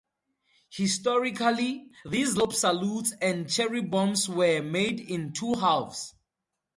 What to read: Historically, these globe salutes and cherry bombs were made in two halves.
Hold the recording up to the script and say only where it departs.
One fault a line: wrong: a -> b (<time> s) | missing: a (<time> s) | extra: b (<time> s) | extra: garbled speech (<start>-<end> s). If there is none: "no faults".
no faults